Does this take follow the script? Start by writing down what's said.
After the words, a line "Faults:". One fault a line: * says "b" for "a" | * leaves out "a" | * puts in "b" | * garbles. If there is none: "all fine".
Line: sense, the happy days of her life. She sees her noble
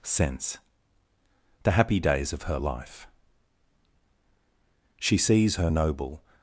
sense, the happy days of her life. She sees her noble
Faults:
all fine